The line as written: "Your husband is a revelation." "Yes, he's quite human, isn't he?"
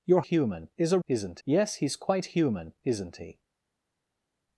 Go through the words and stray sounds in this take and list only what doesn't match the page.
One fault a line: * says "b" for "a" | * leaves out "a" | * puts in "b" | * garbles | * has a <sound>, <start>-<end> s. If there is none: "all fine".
* says "human" for "husband"
* says "isn't" for "revelation"